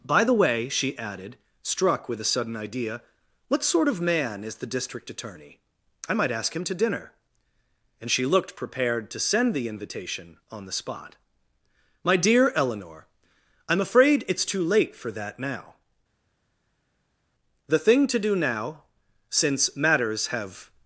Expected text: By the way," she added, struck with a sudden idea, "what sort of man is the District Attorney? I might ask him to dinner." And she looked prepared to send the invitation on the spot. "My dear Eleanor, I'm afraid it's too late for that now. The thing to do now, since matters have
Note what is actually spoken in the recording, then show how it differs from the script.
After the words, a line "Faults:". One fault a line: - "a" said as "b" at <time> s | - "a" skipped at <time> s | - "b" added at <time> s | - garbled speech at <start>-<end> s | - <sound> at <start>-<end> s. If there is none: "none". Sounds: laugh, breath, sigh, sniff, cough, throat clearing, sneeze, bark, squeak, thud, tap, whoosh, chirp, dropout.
By the way," she added, struck with a sudden idea, "what sort of man is the District Attorney? I might ask him to dinner." And she looked prepared to send the invitation on the spot. "My dear Eleanor, I'm afraid it's too late for that now. The thing to do now, since matters have
Faults:
none